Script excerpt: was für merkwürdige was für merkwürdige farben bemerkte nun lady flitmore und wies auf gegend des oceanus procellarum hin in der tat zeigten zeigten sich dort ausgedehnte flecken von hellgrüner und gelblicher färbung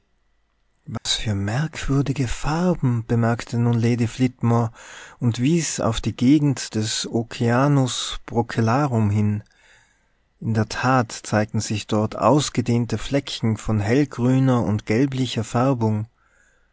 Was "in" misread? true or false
false